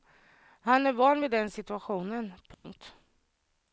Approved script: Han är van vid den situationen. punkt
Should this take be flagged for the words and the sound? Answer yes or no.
yes